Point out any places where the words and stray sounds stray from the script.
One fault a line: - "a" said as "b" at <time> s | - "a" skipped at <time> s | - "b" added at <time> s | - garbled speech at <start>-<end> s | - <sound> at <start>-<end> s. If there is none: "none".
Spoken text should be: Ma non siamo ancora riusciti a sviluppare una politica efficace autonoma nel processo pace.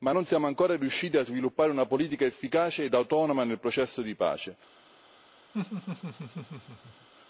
- "ed" added at 2.8 s
- "di" added at 4.0 s
- laugh at 5.5-7.1 s